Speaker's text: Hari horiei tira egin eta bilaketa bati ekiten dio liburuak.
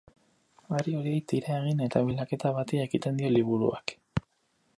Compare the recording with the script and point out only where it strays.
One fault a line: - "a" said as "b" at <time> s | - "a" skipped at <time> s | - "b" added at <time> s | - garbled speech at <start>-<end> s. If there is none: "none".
none